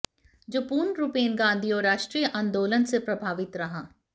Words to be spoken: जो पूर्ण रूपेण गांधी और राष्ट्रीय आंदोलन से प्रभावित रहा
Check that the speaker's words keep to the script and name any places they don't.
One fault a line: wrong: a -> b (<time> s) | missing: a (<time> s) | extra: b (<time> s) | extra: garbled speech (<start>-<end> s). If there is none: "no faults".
no faults